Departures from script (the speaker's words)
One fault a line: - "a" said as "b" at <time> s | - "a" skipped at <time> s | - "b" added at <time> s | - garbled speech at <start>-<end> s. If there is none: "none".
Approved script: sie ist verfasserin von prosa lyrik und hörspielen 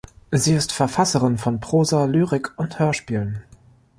none